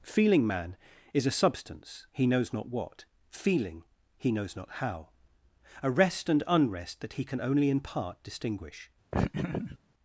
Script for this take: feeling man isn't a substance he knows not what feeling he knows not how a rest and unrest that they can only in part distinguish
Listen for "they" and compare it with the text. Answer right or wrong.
wrong